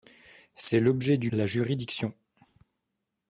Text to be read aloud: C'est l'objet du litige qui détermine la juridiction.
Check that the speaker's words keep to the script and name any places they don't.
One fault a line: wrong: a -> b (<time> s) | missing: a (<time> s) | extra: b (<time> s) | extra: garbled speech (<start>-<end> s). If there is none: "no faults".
missing: litige qui détermine (1.3 s)